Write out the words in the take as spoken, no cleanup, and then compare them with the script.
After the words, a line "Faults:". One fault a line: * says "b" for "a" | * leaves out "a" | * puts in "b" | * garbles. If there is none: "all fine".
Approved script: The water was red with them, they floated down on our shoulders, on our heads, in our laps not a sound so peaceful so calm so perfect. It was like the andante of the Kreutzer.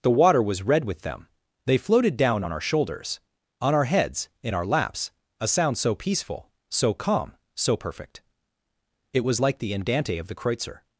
The water was red with them, they floated down on our shoulders, on our heads, in our laps a sound so peaceful so calm so perfect. It was like the andante of the Kreutzer.
Faults:
* leaves out "not"